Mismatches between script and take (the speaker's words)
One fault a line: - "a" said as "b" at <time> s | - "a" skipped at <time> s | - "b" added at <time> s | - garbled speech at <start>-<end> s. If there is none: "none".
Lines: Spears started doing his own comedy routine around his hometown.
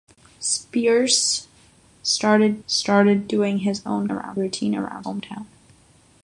- "started" added at 2.6 s
- "comedy" said as "around" at 4.1 s
- "his" skipped at 5.1 s